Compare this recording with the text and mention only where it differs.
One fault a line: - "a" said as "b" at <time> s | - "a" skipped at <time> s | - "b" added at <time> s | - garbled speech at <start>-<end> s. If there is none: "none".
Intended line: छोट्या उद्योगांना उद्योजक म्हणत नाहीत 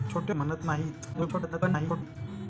- "उद्योगांना उद्योजक" skipped at 0.3 s
- garbled speech at 1.1-2.2 s